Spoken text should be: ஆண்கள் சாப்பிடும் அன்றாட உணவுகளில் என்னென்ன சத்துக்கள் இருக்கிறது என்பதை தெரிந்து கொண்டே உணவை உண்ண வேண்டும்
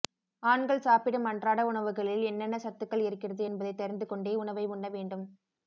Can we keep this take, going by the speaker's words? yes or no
yes